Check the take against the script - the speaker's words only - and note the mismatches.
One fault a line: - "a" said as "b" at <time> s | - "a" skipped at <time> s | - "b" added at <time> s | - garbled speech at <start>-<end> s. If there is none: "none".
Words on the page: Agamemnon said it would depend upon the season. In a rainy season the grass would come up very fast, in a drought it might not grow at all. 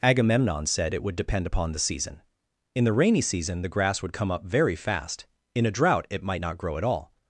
- "a" said as "the" at 2.8 s